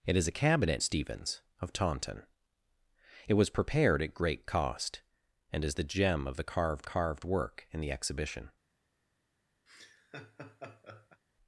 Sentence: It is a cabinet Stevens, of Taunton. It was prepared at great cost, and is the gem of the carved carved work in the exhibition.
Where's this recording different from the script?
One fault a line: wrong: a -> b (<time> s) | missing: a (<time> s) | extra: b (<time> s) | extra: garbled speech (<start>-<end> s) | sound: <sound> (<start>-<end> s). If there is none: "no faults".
sound: laugh (9.7-11.2 s)